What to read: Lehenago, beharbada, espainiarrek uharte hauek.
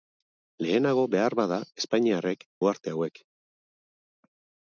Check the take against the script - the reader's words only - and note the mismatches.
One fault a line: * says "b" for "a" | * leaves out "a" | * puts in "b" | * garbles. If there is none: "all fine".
all fine